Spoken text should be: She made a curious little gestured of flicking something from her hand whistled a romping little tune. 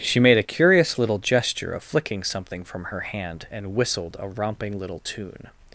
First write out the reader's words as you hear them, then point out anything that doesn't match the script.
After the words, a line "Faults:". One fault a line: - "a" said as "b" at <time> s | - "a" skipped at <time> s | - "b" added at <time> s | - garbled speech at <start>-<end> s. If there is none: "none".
She made a curious little gesture of flicking something from her hand and whistled a romping little tune.
Faults:
- "gestured" said as "gesture" at 1.2 s
- "and" added at 3.5 s